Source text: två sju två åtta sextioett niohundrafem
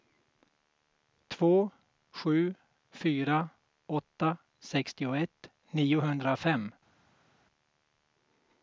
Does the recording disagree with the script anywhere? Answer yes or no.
yes